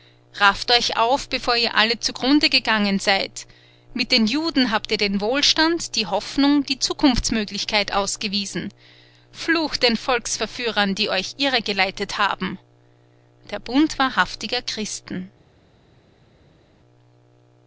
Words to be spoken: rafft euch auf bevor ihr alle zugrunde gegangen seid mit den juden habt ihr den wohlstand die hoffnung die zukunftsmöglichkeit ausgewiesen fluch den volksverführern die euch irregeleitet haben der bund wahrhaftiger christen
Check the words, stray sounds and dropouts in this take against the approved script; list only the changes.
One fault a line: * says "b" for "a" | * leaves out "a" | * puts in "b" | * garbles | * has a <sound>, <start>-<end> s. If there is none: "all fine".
all fine